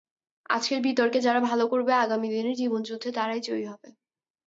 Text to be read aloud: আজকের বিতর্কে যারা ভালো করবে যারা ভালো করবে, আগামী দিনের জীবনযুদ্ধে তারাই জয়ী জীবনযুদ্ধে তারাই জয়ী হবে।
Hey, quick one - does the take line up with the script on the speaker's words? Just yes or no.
no